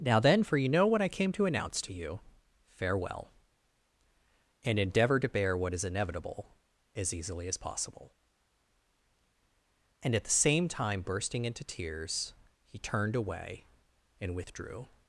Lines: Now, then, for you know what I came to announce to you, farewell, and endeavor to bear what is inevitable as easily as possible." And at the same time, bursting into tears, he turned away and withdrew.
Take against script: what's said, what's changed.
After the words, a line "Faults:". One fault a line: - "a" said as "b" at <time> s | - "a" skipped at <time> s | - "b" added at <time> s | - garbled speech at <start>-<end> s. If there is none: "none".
Now, then, for you know what I came to announce to you, farewell, and endeavor to bear what is inevitable as easily as possible." And at the same time, bursting into tears, he turned away and withdrew.
Faults:
none